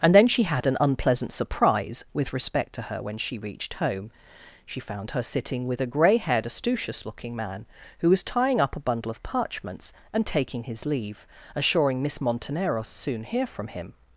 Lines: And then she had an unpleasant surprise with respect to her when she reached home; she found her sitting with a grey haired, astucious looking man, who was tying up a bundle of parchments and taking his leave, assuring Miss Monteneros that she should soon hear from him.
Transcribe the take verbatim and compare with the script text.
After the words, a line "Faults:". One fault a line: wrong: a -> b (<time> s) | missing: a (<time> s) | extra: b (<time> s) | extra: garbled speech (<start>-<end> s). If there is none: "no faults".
And then she had an unpleasant surprise with respect to her when she reached home; she found her sitting with a grey haired, astucious looking man, who was tying up a bundle of parchments and taking his leave, assuring Miss Monteneros soon hear from him.
Faults:
missing: that she should (12.9 s)